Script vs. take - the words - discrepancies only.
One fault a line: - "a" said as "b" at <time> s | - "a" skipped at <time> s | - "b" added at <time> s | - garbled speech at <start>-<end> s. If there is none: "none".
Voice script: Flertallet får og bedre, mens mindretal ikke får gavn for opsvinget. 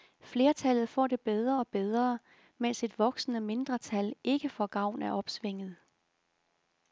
- "det bedre" added at 1.1 s
- "et voksende" added at 2.8 s
- "for" said as "af" at 5.0 s